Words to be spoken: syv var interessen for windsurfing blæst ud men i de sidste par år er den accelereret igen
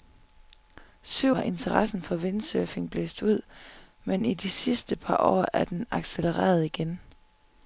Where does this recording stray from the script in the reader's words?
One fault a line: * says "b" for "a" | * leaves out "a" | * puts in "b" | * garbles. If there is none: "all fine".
all fine